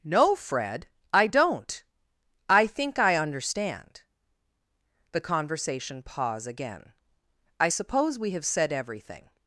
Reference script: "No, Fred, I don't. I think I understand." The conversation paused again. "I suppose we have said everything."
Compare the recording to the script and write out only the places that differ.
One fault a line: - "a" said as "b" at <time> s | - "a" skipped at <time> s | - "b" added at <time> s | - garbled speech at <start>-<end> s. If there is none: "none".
- "paused" said as "pause" at 6.0 s